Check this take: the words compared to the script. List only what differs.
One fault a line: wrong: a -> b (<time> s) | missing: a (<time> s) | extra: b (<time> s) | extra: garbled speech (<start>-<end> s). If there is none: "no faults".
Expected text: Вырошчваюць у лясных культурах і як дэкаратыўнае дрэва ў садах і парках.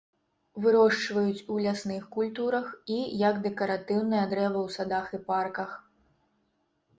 no faults